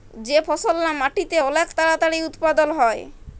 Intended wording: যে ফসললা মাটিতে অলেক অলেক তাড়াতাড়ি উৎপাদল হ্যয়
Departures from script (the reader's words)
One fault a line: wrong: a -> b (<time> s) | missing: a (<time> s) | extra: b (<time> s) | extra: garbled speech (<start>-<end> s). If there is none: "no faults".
missing: অলেক (1.7 s)